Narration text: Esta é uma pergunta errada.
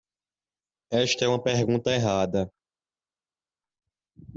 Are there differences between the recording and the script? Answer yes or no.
no